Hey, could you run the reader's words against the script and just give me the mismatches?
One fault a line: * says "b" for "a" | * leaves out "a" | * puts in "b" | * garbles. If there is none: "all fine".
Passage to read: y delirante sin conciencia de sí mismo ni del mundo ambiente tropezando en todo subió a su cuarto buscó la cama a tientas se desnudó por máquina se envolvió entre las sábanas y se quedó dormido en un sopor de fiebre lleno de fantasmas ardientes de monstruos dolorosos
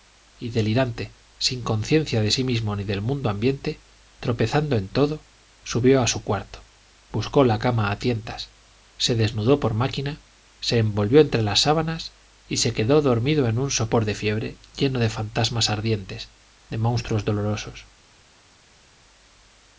all fine